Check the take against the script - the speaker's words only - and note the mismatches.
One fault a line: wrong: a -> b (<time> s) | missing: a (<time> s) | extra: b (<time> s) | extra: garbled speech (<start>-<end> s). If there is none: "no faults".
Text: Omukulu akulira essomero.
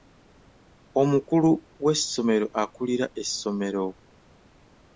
extra: w'essomero (1.8 s)